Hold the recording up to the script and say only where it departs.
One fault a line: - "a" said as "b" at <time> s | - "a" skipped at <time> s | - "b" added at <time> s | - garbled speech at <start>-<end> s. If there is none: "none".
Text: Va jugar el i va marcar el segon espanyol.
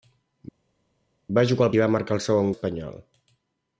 none